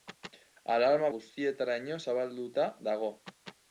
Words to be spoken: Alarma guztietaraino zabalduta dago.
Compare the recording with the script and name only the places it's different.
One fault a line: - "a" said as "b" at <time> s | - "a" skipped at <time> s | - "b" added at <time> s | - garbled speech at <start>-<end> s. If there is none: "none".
none